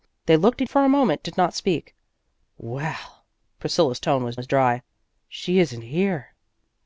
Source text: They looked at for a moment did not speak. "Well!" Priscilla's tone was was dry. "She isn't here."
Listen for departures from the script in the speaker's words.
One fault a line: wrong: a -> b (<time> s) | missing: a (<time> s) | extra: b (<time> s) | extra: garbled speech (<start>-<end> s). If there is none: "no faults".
no faults